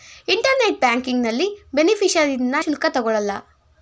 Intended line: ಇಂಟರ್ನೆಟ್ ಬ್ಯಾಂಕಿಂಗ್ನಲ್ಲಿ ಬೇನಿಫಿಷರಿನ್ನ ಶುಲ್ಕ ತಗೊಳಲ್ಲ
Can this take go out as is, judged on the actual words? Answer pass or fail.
pass